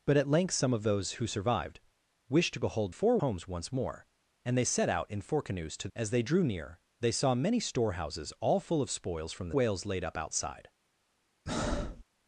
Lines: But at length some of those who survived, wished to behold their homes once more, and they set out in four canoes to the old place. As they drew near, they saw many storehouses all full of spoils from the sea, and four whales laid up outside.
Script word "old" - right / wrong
wrong